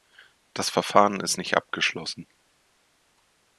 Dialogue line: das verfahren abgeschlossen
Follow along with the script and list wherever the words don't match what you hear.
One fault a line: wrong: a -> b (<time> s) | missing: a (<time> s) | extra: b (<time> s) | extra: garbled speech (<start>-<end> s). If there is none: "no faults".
extra: ist nicht (1.2 s)